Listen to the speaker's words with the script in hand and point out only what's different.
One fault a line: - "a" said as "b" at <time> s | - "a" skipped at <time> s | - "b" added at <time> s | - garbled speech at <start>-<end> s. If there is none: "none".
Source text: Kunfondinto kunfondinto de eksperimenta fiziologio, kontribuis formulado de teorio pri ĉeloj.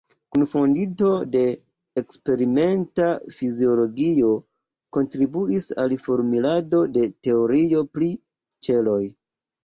- "kunfondinto" skipped at 1.1 s
- "al" added at 5.8 s